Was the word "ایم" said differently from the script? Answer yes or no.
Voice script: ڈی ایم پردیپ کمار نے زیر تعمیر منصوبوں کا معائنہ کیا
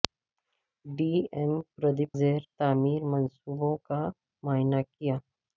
no